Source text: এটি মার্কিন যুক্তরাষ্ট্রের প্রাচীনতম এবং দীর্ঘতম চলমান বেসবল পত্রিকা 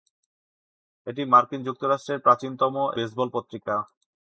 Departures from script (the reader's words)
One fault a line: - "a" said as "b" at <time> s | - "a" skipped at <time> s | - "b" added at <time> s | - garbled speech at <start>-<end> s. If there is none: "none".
- "এবং দীর্ঘতম চলমান" skipped at 2.7 s